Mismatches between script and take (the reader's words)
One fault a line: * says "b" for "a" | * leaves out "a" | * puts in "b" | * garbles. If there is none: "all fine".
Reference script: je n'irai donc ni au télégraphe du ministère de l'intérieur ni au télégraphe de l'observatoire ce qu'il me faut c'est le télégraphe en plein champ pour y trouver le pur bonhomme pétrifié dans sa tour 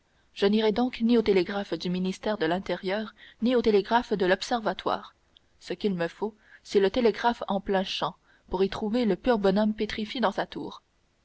all fine